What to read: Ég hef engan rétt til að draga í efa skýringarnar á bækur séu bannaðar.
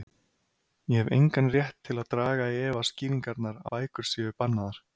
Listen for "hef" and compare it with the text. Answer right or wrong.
right